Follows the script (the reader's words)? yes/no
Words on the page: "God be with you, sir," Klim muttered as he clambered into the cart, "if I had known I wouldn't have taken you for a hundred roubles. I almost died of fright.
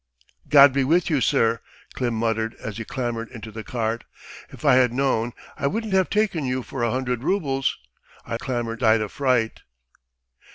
no